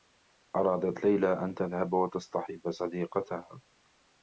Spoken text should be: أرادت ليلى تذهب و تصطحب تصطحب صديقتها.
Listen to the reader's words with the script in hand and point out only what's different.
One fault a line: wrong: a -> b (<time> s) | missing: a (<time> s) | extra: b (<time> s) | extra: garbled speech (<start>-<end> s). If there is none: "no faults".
extra: أن (1.3 s)
missing: تصطحب (2.7 s)